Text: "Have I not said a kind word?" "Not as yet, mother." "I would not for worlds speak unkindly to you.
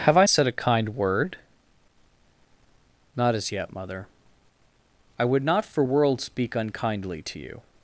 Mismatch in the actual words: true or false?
true